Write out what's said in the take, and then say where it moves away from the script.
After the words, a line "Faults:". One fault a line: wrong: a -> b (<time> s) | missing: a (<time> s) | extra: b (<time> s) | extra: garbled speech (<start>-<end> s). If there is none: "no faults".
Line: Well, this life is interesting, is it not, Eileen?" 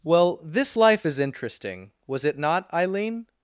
Well, this life is interesting, was it not, Eileen?"
Faults:
wrong: is -> was (2.1 s)